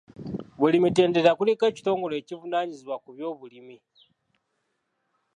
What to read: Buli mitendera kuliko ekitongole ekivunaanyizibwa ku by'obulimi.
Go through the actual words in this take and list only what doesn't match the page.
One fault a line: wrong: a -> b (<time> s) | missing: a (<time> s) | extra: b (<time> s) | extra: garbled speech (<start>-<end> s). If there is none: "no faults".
no faults